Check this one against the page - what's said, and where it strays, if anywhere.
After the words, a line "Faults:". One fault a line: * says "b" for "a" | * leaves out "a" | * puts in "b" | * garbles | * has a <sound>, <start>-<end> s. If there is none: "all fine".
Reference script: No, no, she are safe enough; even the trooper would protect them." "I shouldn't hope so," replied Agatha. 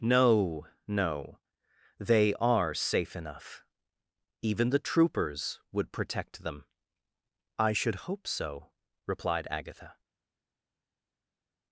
No, no, they are safe enough; even the troopers would protect them." "I should hope so," replied Agatha.
Faults:
* says "they" for "she"
* says "troopers" for "trooper"
* says "should" for "shouldn't"